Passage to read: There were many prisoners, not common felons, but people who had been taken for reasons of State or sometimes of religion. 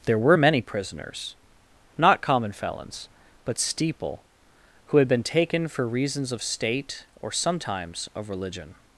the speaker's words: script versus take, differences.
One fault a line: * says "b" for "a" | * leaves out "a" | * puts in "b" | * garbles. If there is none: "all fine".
* says "steeple" for "people"